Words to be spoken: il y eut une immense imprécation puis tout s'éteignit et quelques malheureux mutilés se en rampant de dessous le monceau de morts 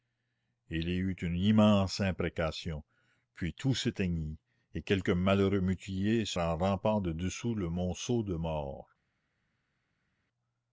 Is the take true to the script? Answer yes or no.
yes